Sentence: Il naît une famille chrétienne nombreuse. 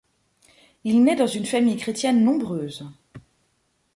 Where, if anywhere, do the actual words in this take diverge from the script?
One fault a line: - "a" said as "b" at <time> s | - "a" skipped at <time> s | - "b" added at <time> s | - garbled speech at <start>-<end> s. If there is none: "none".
- "dans" added at 1.1 s